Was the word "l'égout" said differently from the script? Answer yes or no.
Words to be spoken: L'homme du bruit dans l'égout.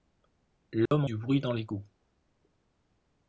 no